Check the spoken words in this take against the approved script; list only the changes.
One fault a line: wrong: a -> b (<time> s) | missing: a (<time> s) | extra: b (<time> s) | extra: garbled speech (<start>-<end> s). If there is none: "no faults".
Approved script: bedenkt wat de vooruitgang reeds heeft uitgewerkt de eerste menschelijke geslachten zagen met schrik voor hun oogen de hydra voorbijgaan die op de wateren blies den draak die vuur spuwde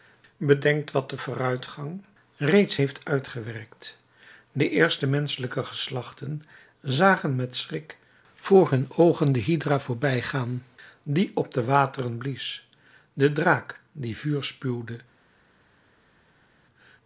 no faults